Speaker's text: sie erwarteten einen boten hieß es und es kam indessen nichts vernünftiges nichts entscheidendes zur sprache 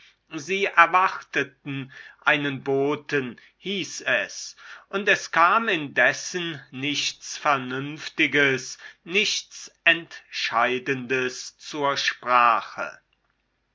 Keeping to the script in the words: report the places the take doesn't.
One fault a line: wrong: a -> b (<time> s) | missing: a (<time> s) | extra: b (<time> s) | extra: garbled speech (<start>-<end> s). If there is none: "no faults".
no faults